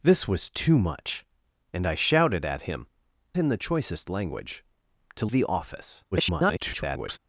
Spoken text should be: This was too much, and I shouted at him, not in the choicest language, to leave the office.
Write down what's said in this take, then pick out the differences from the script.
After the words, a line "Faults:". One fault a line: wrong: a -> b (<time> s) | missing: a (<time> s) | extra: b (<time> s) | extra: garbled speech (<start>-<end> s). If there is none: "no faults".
This was too much, and I shouted at him, in the choicest language, to the office. [garbled]
Faults:
missing: not (2.9 s)
missing: leave (5.3 s)
extra: garbled speech (6.1-7.2 s)